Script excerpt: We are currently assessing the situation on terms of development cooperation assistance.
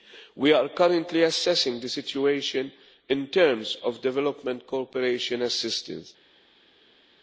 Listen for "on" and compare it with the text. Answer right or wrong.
wrong